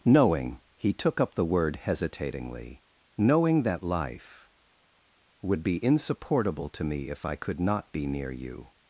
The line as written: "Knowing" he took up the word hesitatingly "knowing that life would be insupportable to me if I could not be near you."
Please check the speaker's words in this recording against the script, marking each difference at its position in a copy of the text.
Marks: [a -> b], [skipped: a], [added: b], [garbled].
"Knowing" he took up the word hesitatingly "knowing that life would be insupportable to me if I could not be near you."